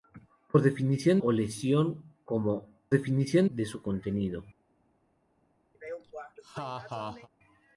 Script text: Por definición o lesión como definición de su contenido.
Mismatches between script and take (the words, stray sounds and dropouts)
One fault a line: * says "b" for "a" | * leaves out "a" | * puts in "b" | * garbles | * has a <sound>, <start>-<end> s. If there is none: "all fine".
* has a laugh, 5.7-7.3 s